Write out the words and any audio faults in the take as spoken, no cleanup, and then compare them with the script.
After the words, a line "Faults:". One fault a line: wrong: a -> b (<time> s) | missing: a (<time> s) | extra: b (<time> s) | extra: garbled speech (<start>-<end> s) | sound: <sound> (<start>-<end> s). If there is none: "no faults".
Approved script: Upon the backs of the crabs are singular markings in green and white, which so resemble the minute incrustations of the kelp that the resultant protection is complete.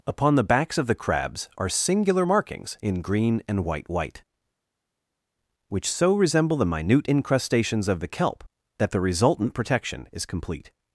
Upon the backs of the crabs are singular markings in green and white white, which so resemble the minute incrustations of the kelp that the resultant protection is complete.
Faults:
extra: white (3.9 s)